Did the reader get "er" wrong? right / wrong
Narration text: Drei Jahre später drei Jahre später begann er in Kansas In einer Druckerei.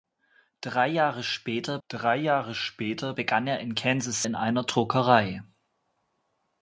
right